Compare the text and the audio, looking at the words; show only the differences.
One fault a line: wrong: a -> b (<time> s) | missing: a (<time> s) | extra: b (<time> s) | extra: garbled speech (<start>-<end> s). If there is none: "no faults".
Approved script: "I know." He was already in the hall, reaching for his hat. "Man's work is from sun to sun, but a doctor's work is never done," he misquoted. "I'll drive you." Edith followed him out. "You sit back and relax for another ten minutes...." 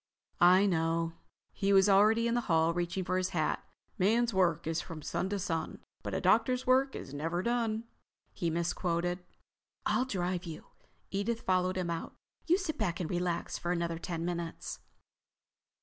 no faults